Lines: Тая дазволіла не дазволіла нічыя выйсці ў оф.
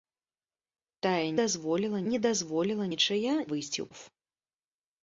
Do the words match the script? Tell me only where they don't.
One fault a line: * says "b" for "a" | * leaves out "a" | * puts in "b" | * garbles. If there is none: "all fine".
all fine